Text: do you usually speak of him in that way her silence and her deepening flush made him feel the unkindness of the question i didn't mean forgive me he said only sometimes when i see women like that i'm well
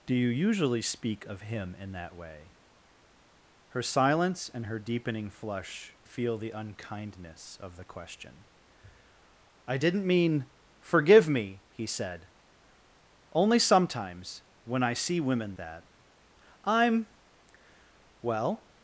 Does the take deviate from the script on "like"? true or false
true